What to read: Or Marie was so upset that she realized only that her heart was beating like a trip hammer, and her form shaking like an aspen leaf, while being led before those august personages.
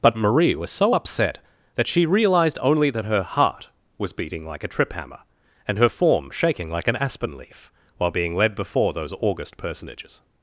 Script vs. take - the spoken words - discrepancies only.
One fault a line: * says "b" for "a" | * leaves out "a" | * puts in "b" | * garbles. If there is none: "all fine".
* says "But" for "Or"